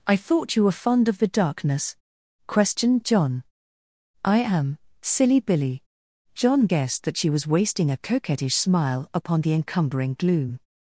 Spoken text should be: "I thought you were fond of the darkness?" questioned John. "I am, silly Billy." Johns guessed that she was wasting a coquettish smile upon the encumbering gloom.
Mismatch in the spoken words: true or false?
true